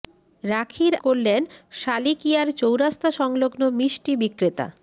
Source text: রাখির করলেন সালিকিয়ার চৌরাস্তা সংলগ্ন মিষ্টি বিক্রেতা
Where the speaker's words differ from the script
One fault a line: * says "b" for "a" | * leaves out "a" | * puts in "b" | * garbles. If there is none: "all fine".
all fine